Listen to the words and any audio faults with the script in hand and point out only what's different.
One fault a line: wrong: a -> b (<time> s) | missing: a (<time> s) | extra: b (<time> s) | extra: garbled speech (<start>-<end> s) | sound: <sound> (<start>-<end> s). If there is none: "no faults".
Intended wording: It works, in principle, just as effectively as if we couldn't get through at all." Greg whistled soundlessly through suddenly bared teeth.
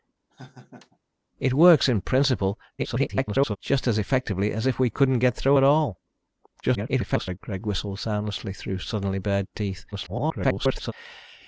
sound: laugh (0.3-1.0 s)
extra: garbled speech (2.8-3.6 s)
extra: garbled speech (6.6-7.4 s)
extra: garbled speech (9.9-10.9 s)